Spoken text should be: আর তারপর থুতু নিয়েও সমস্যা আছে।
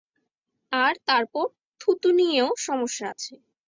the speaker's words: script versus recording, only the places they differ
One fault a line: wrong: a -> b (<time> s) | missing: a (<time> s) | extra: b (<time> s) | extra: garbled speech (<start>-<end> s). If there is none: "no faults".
no faults